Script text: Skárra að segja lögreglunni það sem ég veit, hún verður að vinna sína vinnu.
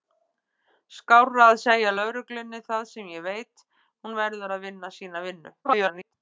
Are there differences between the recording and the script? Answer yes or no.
yes